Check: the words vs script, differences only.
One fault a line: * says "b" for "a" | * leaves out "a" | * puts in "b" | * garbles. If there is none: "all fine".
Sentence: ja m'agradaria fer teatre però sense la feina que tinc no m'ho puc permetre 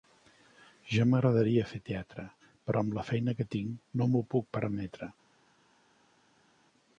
* says "amb" for "sense"